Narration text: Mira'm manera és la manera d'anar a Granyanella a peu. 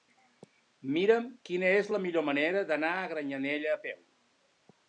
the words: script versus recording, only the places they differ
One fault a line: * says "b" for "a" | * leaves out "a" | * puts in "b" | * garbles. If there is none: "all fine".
* says "quina" for "manera"
* puts in "millor"